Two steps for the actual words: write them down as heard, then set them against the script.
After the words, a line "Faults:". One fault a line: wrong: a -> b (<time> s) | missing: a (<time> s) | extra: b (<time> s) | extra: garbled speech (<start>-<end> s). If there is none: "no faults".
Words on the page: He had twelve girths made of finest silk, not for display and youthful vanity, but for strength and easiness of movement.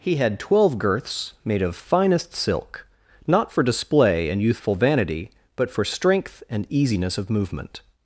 He had twelve girths made of finest silk, not for display and youthful vanity, but for strength and easiness of movement.
Faults:
no faults